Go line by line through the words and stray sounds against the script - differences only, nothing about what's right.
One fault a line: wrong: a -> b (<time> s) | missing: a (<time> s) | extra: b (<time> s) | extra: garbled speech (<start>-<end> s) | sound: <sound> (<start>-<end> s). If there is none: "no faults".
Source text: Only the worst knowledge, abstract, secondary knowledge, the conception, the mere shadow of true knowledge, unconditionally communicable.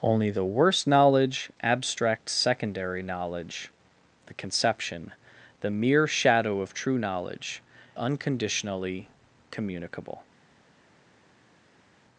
no faults